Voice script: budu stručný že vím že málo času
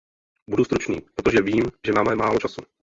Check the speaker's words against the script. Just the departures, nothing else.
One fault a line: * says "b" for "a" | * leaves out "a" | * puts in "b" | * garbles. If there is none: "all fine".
* says "protože" for "že"
* puts in "máme"